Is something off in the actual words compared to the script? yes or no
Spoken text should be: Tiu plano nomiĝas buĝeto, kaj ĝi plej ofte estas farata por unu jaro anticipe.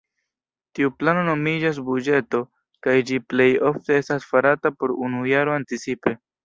no